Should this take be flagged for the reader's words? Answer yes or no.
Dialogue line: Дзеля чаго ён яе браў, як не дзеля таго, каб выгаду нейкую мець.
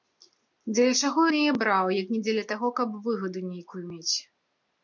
no